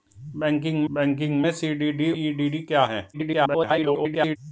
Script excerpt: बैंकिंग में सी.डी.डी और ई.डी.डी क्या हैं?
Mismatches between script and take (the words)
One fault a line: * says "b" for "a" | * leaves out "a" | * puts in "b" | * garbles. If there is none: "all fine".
* puts in "बैंकिंग"
* leaves out "और"
* garbles